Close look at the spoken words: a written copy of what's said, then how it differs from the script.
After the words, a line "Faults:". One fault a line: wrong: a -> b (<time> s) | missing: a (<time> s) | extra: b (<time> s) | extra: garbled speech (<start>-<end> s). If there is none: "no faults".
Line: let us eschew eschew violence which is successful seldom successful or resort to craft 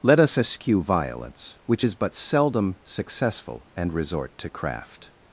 let us eschew violence which is but seldom successful and resort to craft
Faults:
missing: eschew (0.8 s)
wrong: successful -> but (2.0 s)
wrong: or -> and (3.7 s)